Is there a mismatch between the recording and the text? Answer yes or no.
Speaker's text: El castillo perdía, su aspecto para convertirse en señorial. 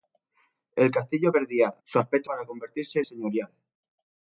no